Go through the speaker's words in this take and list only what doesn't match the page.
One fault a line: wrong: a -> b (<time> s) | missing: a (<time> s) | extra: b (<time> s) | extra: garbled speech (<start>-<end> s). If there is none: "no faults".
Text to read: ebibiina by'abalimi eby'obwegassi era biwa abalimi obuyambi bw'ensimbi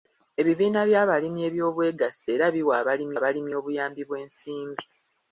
extra: abalimi (3.2 s)